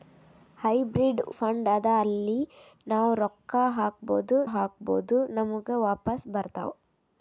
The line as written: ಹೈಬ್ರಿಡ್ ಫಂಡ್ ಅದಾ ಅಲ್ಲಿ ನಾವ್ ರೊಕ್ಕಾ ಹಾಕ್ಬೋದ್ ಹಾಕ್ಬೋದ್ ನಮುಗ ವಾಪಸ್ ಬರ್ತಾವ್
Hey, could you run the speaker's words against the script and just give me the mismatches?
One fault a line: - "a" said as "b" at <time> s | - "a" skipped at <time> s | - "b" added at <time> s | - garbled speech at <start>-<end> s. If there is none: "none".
none